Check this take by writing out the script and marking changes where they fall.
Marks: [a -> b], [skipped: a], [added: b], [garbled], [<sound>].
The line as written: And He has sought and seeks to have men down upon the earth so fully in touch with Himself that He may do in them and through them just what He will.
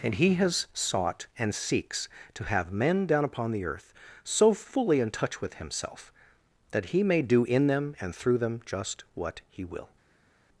And He has sought and seeks to have men down upon the earth so fully in touch with Himself that He may do in them and through them just what He will.